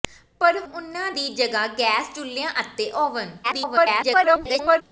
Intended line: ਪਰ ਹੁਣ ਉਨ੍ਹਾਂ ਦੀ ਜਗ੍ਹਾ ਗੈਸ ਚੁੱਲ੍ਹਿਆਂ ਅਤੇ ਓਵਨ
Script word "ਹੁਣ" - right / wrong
wrong